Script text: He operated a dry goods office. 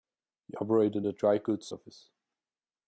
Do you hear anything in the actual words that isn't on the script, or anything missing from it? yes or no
no